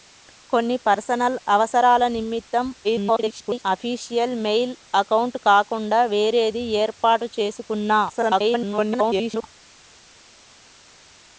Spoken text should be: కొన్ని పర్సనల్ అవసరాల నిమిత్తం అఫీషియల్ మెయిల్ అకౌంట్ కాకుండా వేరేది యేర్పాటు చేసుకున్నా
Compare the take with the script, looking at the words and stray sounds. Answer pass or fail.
fail